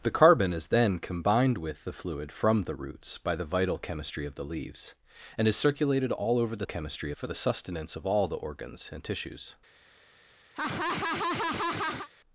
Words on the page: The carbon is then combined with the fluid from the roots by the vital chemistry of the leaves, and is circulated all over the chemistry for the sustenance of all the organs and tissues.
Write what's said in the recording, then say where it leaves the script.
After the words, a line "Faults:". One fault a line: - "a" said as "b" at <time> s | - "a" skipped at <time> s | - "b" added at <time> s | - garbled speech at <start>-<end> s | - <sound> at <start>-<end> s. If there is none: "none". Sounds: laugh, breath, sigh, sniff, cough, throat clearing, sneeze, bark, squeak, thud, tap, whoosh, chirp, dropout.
The carbon is then combined with the fluid from the roots by the vital chemistry of the leaves, and is circulated all over the chemistry for the sustenance of all the organs and tissues.
Faults:
- laugh at 10.5-12.1 s